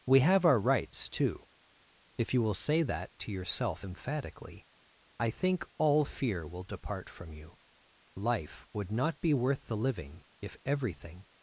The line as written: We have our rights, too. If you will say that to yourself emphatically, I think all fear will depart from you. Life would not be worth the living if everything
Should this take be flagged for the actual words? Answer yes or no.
no